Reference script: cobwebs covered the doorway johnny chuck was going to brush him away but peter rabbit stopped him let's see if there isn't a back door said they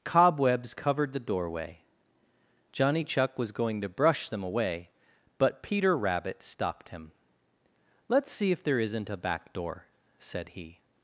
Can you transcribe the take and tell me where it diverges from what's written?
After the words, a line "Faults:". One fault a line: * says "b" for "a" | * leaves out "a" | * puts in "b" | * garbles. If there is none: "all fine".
cobwebs covered the doorway johnny chuck was going to brush them away but peter rabbit stopped him let's see if there isn't a back door said he
Faults:
* says "them" for "him"
* says "he" for "they"